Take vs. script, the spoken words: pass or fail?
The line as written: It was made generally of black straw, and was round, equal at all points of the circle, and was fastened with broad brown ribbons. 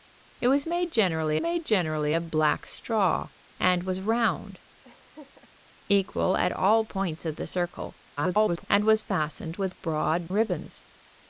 fail